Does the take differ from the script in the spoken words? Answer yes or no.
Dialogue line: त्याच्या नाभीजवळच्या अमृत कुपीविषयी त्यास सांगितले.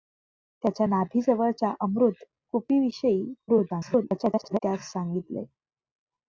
yes